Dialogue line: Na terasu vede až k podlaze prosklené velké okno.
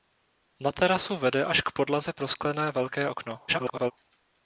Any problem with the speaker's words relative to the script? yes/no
yes